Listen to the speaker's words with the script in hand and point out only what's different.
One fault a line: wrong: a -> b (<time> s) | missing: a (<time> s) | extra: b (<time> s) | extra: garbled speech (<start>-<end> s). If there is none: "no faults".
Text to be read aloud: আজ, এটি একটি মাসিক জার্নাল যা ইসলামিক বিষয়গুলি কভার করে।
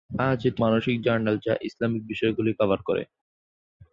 missing: একটি (0.6 s)